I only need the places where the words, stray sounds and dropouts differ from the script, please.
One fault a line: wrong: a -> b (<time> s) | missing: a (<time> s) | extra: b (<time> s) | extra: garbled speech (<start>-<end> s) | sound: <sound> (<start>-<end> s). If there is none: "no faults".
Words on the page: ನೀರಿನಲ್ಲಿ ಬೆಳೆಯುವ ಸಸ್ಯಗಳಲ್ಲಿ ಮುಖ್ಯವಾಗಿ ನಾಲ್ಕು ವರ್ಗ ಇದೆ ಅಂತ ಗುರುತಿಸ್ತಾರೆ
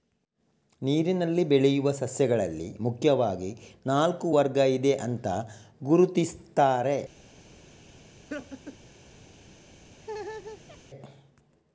sound: laugh (8.3-8.8 s)
sound: laugh (10.0-10.8 s)